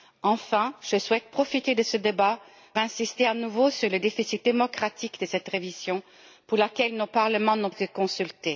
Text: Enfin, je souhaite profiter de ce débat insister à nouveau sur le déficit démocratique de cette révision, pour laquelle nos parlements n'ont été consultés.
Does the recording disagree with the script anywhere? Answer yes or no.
no